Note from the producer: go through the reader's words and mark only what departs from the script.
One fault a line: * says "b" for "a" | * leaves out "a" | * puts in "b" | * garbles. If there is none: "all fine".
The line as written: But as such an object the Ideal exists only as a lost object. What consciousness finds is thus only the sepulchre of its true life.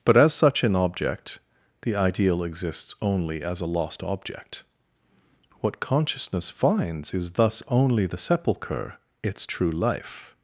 * leaves out "of"